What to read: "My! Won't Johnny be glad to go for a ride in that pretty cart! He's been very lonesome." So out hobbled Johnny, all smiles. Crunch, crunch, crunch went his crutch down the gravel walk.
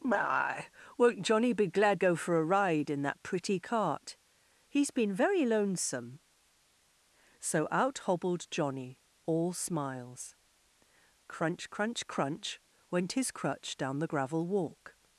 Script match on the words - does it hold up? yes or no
no